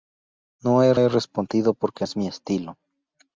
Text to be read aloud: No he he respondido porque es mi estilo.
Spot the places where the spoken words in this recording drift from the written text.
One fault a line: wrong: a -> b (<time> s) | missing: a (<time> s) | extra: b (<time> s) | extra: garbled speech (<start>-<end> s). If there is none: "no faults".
no faults